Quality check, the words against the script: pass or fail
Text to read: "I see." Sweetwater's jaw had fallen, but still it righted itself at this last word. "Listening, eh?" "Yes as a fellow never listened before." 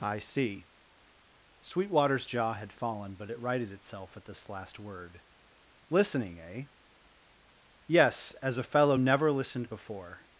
fail